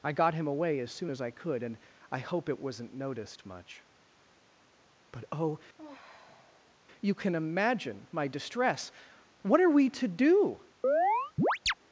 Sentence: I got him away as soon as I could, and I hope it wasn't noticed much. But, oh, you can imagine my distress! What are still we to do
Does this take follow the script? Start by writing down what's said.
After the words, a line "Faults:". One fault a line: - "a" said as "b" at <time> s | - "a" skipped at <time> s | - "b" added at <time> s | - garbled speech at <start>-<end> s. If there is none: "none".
I got him away as soon as I could, and I hope it wasn't noticed much. But, oh, you can imagine my distress! What are we to do
Faults:
- "still" skipped at 9.7 s